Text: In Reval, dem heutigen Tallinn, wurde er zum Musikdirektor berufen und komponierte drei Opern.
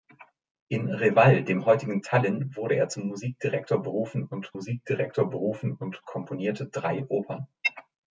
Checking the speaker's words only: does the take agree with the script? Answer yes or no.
no